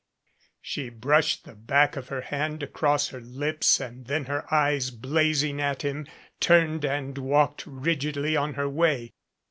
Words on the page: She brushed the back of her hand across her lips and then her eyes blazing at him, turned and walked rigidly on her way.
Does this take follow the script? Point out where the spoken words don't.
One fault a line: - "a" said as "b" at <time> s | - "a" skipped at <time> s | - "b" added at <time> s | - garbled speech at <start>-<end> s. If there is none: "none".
none